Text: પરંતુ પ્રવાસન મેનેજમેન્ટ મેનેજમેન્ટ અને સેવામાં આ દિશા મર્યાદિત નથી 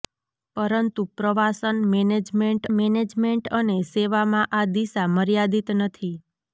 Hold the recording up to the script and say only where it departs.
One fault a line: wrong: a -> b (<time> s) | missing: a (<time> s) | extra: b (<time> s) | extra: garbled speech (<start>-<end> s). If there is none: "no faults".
no faults